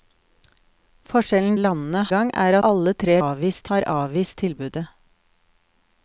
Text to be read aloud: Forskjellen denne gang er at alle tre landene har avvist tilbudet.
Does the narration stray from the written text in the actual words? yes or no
yes